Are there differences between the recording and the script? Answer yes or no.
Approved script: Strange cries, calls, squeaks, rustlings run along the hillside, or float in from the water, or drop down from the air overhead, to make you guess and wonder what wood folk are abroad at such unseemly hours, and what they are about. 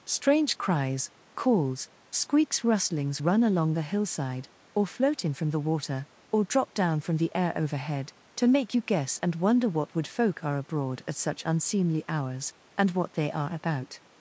no